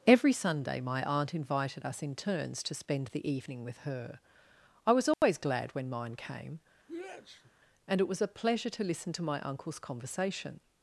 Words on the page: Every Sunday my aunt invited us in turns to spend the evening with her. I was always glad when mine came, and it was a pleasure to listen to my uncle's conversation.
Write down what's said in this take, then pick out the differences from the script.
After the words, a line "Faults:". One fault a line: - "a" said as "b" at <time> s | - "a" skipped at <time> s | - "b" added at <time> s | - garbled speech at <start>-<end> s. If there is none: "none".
Every Sunday my aunt invited us in turns to spend the evening with her. I was always glad when mine came, and it was a pleasure to listen to my uncle's conversation.
Faults:
none